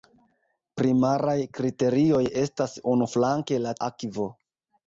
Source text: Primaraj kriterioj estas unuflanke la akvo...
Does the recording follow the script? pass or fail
pass